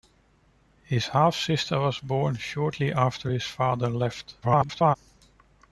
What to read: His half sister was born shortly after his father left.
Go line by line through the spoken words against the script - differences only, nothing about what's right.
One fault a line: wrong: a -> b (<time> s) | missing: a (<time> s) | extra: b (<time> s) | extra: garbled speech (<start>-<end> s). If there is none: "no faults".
extra: garbled speech (4.4-5.0 s)